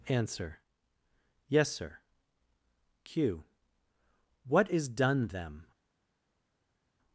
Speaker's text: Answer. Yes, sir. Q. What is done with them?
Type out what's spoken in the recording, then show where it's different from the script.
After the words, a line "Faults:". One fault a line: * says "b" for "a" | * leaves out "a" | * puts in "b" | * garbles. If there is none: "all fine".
Answer. Yes, sir. Q. What is done them?
Faults:
* leaves out "with"